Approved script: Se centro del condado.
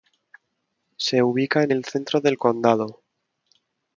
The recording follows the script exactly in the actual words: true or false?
false